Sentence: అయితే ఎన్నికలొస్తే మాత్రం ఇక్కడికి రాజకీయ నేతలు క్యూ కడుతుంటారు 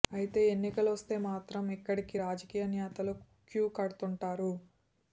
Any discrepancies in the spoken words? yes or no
no